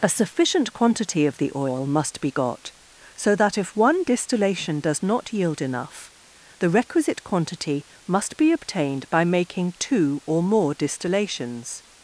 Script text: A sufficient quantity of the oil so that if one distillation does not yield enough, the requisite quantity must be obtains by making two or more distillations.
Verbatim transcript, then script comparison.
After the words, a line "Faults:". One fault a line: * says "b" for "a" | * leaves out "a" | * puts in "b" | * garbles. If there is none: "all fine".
A sufficient quantity of the oil must be got, so that if one distillation does not yield enough, the requisite quantity must be obtained by making two or more distillations.
Faults:
* puts in "must be got"
* says "obtained" for "obtains"